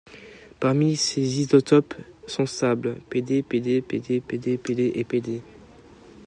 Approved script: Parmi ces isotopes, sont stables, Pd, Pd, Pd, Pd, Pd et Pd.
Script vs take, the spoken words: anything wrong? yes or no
no